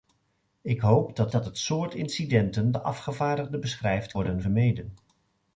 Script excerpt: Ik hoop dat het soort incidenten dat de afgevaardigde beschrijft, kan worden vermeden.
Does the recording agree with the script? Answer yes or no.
no